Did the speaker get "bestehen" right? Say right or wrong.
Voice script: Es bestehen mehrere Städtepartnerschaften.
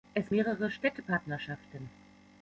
wrong